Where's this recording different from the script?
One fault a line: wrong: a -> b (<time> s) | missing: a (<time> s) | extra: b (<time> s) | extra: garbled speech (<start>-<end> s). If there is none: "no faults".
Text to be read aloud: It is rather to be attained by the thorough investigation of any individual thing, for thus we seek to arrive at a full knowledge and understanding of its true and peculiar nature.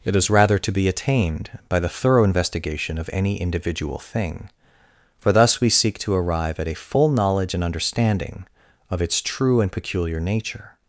no faults